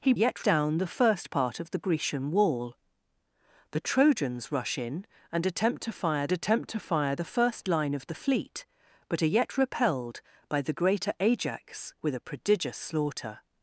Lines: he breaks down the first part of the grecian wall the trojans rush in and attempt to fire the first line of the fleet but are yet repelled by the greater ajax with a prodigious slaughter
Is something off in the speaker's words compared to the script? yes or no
yes